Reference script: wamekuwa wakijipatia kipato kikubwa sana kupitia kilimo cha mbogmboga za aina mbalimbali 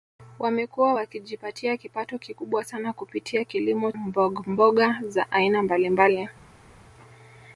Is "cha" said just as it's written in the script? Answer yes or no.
no